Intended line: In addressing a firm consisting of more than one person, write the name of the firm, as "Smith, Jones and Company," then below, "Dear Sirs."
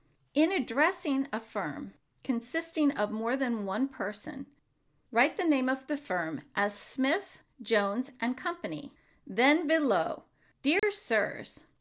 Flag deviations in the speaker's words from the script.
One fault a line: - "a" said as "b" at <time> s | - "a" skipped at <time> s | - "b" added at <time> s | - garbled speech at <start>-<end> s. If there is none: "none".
none